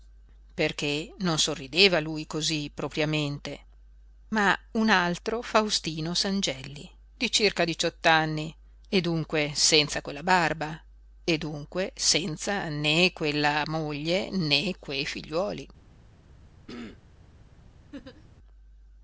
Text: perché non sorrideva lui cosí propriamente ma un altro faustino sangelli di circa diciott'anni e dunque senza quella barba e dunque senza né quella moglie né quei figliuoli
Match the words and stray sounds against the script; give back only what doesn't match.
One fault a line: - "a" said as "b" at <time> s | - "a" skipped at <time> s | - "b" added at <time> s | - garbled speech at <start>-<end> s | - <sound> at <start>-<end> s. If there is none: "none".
- throat clearing at 16.7-17.0 s
- laugh at 17.9-18.3 s